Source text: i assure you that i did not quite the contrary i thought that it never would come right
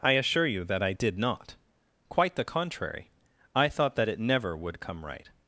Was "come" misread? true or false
false